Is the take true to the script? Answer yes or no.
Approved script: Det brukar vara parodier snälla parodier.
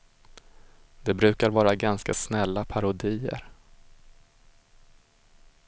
no